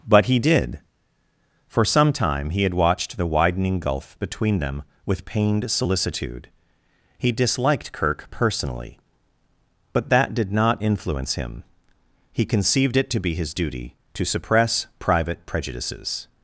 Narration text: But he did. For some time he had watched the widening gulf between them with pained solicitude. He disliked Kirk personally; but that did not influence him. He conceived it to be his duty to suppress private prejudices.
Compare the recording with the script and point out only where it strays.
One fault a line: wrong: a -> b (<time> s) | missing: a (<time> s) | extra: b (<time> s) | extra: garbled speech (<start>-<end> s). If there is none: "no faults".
no faults